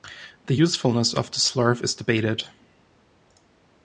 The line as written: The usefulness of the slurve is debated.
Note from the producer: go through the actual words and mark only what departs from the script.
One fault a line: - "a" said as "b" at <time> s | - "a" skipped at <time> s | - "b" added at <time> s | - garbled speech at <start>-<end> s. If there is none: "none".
none